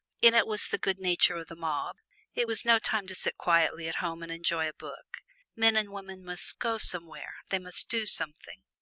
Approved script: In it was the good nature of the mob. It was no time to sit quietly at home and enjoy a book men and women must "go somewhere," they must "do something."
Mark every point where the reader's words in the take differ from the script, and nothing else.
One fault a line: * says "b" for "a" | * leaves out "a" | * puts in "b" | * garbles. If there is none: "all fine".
all fine